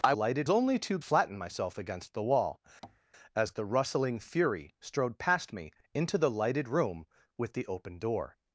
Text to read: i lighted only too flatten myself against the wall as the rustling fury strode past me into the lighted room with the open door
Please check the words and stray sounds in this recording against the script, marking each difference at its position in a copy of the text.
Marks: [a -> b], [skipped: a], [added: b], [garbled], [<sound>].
i lighted only too flatten myself against the wall [tap] as the rustling fury strode past me into the lighted room with the open door